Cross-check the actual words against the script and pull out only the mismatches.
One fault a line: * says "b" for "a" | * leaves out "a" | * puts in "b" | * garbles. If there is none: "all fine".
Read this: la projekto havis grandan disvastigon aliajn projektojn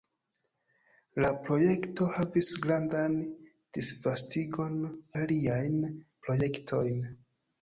all fine